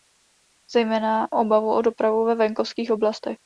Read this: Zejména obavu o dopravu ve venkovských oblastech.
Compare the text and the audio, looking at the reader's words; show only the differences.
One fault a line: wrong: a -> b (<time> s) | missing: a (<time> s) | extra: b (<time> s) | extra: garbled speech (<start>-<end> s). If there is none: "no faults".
no faults